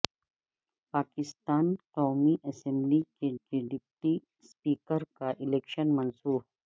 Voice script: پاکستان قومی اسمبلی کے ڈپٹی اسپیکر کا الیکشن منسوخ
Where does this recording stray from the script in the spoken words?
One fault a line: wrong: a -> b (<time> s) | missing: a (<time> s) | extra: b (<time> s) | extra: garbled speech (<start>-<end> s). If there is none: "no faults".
extra: کے (3.4 s)